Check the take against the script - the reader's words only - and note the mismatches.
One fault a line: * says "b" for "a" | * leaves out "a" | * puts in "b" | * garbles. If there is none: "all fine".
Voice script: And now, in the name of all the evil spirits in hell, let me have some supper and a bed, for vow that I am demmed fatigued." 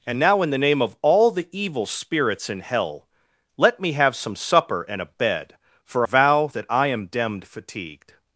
all fine